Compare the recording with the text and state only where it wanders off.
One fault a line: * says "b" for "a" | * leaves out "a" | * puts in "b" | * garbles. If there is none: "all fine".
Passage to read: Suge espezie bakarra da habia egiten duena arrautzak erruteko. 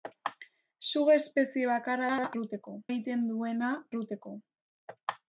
* says "erruteko" for "habia"
* leaves out "arrautzak"